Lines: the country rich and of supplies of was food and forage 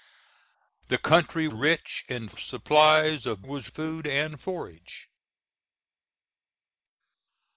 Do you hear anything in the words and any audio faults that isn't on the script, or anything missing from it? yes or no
no